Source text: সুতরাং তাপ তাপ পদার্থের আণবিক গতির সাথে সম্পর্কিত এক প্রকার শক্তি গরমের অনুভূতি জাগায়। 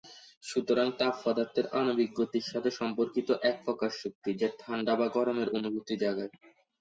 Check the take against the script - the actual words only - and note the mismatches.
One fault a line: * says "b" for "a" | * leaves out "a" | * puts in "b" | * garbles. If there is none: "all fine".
* leaves out "তাপ"
* puts in "যা ঠান্ডা বা"